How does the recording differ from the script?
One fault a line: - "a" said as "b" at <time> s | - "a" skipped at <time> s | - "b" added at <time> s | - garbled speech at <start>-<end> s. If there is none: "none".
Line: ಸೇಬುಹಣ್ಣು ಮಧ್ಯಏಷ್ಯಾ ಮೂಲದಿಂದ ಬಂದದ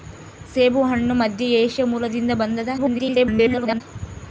- garbled speech at 2.8-3.8 s